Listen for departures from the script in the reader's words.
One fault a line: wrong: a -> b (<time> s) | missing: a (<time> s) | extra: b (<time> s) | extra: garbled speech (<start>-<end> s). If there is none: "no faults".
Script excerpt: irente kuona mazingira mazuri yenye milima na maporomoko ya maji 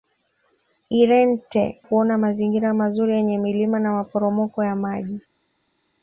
no faults